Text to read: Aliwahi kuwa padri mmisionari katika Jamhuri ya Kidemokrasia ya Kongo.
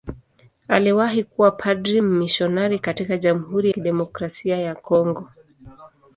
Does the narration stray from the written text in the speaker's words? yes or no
yes